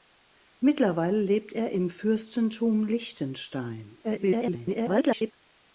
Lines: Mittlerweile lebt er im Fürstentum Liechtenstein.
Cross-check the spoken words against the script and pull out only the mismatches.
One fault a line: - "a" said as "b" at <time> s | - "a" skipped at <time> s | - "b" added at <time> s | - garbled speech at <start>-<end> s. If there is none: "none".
- garbled speech at 4.0-5.3 s